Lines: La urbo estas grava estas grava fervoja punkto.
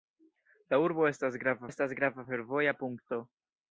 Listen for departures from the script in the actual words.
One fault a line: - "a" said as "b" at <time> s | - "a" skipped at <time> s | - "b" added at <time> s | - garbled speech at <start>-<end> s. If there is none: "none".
none